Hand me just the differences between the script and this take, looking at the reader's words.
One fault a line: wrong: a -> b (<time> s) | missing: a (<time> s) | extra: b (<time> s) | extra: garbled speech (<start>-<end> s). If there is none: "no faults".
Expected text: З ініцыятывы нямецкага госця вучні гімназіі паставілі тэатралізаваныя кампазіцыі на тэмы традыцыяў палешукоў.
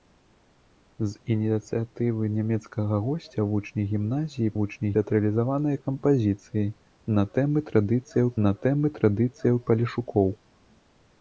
wrong: паставілі -> вучні (4.6 s)
extra: на тэмы традыцыяў (8.5 s)